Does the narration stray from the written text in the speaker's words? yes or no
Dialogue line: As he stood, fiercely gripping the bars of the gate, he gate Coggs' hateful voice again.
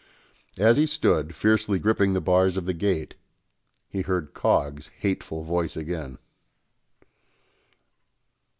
yes